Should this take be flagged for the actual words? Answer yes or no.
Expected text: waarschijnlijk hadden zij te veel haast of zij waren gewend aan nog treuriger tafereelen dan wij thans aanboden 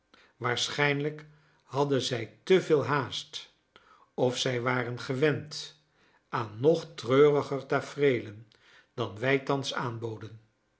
no